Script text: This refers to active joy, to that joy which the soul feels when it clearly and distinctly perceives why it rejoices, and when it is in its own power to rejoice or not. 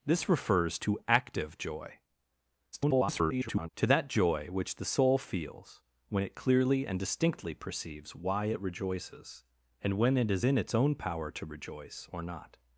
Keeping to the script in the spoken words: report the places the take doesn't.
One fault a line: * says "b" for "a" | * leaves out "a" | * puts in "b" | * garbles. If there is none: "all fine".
* garbles